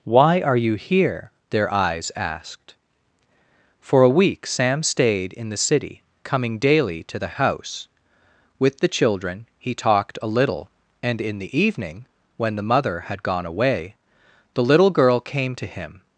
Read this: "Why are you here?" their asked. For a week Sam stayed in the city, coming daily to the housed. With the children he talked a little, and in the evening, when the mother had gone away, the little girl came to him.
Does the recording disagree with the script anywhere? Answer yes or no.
yes